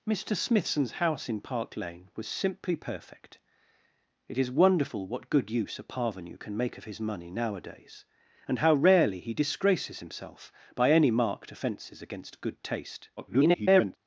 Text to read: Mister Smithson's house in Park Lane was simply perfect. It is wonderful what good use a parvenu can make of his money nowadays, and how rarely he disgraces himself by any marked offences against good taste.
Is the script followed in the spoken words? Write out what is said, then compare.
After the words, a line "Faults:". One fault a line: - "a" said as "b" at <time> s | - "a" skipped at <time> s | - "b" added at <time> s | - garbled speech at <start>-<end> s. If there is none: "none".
Mister Smithson's house in Park Lane was simply perfect. It is wonderful what good use a parvenu can make of his money nowadays, and how rarely he disgraces himself by any marked offences against good taste. [garbled]
Faults:
- garbled speech at 13.2-14.0 s